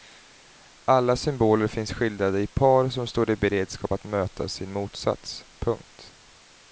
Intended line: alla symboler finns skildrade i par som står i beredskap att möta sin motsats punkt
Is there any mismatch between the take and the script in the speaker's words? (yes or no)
no